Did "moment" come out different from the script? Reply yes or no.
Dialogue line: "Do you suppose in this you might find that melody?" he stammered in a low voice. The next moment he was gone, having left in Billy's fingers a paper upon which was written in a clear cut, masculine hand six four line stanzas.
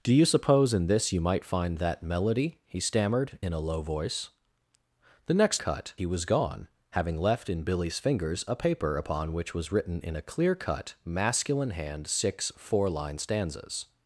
yes